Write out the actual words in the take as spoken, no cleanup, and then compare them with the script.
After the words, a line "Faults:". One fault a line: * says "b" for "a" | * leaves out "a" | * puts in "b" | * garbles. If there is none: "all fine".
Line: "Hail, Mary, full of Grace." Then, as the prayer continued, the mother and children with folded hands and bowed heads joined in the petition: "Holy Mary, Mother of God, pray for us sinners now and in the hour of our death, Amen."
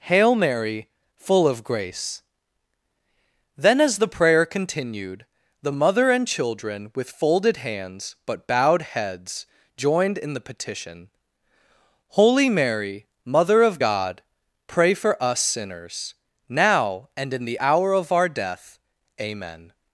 "Hail, Mary, full of Grace." Then, as the prayer continued, the mother and children with folded hands but bowed heads joined in the petition: "Holy Mary, Mother of God, pray for us sinners now and in the hour of our death, Amen."
Faults:
* says "but" for "and"